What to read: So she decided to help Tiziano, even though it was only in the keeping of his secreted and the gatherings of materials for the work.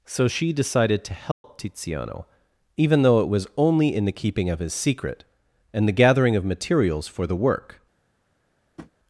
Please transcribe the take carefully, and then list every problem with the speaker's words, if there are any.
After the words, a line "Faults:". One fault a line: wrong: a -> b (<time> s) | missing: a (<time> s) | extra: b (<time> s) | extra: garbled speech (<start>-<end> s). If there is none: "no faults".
So she decided to help Tiziano, even though it was only in the keeping of his secret and the gathering of materials for the work.
Faults:
wrong: secreted -> secret (4.7 s)
wrong: gatherings -> gathering (5.9 s)